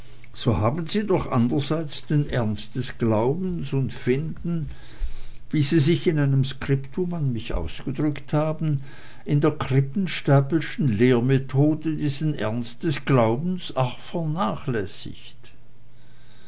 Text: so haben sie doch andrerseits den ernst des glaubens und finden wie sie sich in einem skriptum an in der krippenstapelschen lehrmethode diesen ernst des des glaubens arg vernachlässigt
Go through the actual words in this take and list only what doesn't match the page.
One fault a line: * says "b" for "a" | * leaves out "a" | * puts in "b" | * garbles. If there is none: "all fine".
* puts in "mich ausgedrückt haben"
* leaves out "des"